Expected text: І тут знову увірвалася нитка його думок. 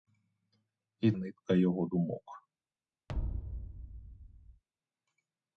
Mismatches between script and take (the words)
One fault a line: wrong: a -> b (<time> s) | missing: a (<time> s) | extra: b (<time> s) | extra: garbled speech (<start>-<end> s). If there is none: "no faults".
missing: тут знову увірвалася (1.1 s)